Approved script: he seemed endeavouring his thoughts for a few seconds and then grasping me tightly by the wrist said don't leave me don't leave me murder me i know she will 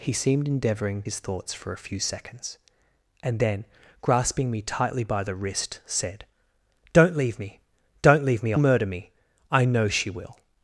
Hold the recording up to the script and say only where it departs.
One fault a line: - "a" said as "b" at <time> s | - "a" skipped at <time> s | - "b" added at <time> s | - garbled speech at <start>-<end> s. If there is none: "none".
none